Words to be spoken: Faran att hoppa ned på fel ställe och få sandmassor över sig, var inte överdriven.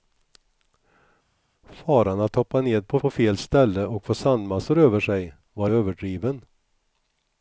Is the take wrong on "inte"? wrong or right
wrong